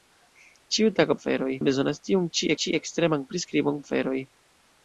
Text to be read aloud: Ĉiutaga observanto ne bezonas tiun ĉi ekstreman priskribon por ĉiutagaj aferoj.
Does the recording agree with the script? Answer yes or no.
no